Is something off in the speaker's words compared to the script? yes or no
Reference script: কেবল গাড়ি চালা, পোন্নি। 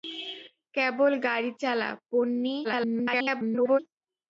yes